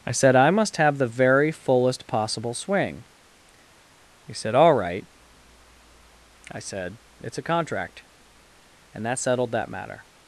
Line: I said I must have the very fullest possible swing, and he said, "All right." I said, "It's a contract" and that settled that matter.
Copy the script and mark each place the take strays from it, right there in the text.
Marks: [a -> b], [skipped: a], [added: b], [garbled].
I said I must have the very fullest possible swing, [skipped: and] he said, "All right." I said, "It's a contract" and that settled that matter.